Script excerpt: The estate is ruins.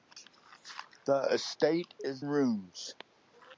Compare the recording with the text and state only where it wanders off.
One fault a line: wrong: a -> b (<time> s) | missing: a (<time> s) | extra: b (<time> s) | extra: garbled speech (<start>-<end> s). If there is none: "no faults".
no faults